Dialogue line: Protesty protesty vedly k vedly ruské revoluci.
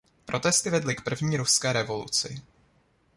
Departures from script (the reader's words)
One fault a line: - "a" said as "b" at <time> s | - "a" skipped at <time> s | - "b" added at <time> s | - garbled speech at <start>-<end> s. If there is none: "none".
- "protesty" skipped at 0.7 s
- "vedly" said as "první" at 1.0 s